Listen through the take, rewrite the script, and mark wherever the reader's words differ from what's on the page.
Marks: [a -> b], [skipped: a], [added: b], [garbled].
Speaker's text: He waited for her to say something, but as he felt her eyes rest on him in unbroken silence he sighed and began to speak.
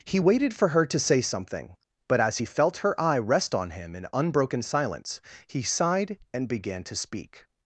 He waited for her to say something, but as he felt her [eyes -> eye] rest on him in unbroken silence he sighed and began to speak.